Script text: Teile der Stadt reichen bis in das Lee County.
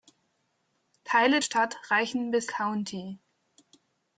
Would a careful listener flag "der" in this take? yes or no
yes